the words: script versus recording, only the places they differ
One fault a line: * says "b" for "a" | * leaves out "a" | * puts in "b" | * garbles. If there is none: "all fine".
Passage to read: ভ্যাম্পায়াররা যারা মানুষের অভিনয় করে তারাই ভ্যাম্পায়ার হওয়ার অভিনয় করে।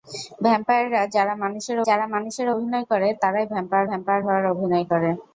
* puts in "যারা মানুষের"
* puts in "ভ্যাম্পায়ার"